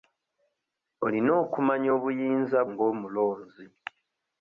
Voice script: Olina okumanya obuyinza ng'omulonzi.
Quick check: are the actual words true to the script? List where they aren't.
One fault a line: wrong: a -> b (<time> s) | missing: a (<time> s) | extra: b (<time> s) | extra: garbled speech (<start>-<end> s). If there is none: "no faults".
no faults